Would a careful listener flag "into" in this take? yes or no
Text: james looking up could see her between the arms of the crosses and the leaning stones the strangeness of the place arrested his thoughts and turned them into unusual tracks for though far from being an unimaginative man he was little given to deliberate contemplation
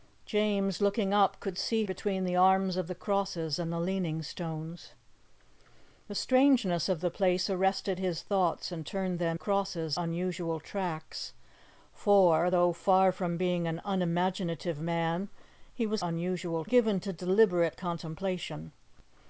yes